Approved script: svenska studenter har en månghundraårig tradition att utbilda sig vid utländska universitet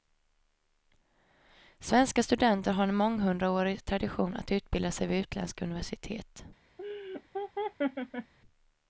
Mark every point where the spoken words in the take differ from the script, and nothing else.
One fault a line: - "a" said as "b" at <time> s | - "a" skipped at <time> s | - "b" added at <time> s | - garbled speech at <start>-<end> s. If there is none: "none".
none